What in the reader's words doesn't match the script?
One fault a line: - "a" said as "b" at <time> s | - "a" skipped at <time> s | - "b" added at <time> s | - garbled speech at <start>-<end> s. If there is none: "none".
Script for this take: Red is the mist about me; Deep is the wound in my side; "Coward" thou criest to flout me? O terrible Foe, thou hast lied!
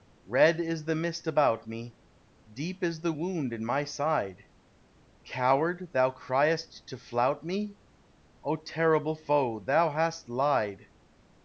none